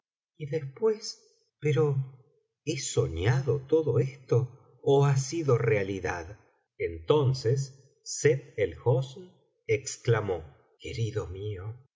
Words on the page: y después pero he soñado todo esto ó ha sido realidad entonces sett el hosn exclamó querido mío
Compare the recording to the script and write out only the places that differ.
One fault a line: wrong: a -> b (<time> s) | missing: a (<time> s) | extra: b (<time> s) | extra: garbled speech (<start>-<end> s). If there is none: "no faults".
no faults